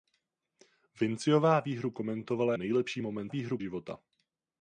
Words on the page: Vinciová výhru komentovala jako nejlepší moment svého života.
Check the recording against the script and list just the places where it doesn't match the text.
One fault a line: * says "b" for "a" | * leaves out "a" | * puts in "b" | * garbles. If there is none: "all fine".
* leaves out "jako"
* says "výhru" for "svého"